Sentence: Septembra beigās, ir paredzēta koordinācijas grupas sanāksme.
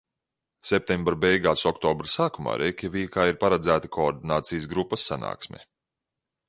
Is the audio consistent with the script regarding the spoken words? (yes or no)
no